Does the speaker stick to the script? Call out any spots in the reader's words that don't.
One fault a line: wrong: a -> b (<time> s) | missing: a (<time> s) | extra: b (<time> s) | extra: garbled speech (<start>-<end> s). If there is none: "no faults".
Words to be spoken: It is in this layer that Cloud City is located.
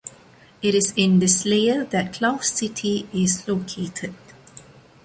no faults